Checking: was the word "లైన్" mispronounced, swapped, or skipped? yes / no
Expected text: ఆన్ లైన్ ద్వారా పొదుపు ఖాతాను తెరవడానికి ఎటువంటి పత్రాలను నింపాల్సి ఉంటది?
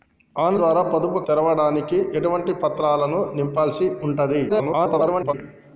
yes